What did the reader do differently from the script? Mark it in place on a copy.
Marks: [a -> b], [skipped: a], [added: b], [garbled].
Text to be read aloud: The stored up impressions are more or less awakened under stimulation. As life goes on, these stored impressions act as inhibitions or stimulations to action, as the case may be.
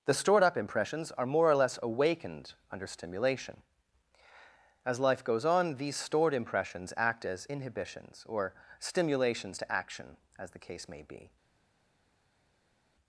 The stored up impressions are more or less awakened under stimulation. As life goes on, these stored impressions act as inhibitions or stimulations to action, as the case may be.